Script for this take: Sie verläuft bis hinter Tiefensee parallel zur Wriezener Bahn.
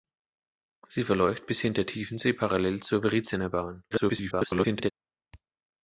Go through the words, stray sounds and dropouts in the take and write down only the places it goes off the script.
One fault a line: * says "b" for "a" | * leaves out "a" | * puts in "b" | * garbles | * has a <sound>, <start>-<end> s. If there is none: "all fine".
* garbles